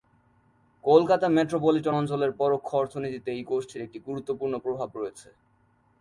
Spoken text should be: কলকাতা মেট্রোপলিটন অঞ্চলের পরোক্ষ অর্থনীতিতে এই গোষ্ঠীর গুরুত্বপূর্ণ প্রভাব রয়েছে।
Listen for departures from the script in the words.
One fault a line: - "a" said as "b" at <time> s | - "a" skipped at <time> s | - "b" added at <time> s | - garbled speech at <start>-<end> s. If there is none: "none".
- "একটি" added at 3.9 s